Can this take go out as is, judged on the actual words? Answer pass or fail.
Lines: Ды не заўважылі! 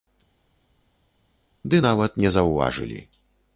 fail